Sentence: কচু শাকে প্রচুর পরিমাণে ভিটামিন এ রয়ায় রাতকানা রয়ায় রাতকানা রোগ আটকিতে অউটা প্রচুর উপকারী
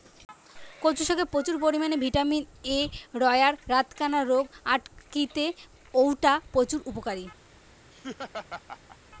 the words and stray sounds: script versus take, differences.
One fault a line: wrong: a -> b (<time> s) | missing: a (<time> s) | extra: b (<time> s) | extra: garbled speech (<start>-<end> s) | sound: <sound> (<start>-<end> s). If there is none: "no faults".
missing: রয়ায় রাতকানা (4.2 s)
sound: laugh (7.9-9.0 s)